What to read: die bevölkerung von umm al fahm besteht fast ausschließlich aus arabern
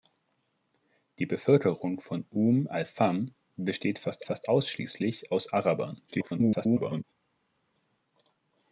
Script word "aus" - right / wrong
right